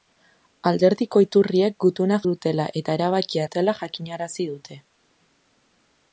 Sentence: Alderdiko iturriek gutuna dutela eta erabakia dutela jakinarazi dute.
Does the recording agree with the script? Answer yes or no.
yes